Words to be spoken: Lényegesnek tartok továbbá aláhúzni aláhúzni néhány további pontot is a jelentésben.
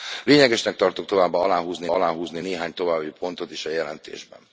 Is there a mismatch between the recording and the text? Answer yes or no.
no